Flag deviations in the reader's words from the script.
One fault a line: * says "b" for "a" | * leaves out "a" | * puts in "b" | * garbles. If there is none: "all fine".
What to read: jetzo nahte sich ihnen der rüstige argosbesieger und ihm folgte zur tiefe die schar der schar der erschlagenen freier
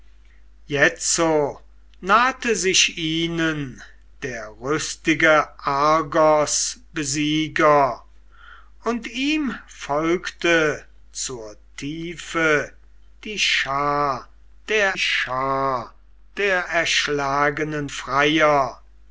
all fine